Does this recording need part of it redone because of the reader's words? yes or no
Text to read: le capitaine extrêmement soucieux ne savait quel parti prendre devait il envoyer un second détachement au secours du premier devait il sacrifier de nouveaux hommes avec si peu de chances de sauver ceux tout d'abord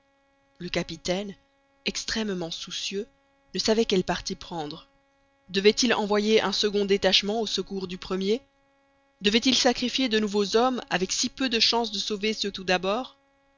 no